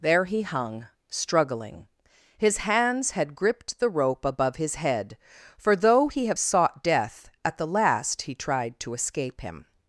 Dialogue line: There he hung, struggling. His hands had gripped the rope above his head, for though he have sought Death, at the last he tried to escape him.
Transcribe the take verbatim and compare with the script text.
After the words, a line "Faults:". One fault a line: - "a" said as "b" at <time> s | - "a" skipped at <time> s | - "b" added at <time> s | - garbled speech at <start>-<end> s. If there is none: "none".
There he hung, struggling. His hands had gripped the rope above his head, for though he have sought Death, at the last he tried to escape him.
Faults:
none